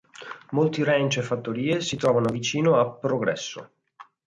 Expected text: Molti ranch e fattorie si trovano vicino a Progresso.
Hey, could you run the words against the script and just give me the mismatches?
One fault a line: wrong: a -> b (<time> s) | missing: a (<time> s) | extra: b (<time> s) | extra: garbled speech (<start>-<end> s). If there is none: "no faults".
no faults